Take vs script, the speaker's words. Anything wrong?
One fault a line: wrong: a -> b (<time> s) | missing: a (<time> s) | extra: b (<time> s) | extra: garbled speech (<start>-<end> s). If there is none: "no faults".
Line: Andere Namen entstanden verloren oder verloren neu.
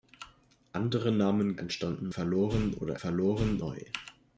no faults